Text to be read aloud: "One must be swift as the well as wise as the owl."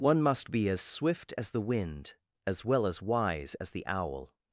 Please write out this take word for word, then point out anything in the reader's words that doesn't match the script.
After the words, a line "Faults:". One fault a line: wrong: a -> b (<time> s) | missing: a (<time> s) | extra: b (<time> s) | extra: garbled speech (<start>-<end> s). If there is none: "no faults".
"One must be as swift as the wind as well as wise as the owl."
Faults:
extra: as (0.7 s)
extra: wind as (1.6 s)